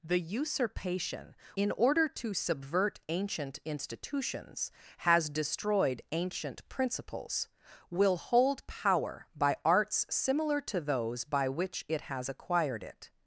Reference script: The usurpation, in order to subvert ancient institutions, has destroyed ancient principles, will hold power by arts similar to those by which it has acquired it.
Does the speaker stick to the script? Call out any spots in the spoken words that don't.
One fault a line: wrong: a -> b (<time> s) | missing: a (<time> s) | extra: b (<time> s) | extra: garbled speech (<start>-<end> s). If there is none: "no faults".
no faults